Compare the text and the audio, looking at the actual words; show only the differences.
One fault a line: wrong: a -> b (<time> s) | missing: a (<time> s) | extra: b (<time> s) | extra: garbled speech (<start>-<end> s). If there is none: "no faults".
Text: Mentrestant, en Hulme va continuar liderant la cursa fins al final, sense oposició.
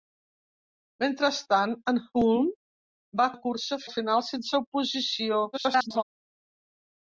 missing: continuar liderant (3.3 s)
missing: fins (3.8 s)
extra: garbled speech (5.5-6.0 s)